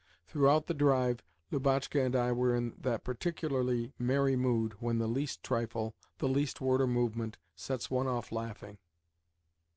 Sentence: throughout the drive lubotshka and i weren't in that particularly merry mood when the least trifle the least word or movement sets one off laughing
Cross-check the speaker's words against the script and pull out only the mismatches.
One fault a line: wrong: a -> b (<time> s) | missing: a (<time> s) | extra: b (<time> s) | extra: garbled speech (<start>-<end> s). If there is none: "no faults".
wrong: weren't -> were (2.3 s)